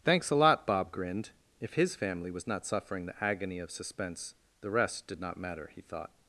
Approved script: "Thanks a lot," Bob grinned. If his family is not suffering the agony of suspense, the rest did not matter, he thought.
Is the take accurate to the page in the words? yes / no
no